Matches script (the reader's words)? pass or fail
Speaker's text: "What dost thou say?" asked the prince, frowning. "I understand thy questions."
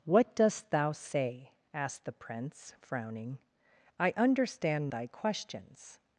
pass